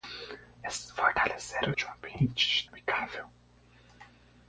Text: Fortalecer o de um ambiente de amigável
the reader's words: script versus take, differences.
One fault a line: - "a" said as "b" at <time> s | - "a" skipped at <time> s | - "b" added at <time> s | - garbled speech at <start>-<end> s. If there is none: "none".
none